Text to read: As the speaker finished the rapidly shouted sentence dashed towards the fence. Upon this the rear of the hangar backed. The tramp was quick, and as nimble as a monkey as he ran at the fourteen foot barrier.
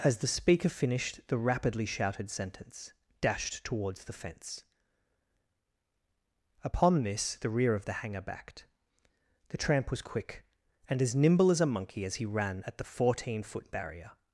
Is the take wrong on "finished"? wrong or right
right